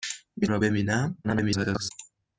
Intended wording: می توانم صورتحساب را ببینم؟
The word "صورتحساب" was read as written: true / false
false